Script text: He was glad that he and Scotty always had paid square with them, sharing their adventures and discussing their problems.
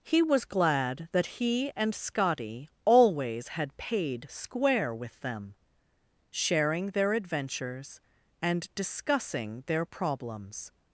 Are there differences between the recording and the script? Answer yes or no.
no